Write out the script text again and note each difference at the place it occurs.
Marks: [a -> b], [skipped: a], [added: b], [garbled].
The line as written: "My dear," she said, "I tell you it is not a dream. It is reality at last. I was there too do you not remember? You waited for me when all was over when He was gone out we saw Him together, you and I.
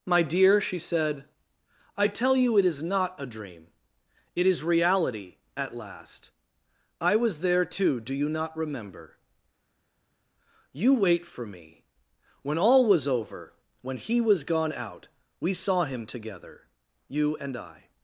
"My dear," she said, "I tell you it is not a dream. It is reality at last. I was there too do you not remember? You [waited -> wait] for me when all was over when He was gone out we saw Him together, you and I.